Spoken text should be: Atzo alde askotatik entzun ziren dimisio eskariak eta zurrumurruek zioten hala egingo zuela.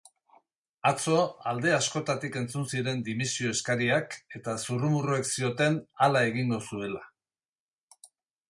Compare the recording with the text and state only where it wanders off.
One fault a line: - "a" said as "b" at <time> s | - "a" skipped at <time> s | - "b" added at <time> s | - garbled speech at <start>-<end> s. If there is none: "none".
none